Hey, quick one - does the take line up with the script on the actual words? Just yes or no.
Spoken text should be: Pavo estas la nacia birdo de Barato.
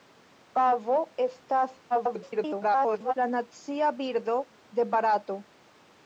no